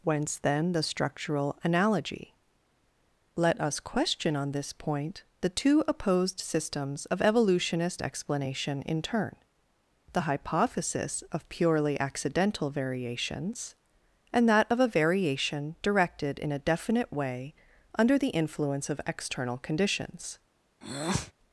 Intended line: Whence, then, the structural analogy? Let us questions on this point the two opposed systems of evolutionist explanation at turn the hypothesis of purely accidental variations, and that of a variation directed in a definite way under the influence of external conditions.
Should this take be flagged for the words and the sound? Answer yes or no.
yes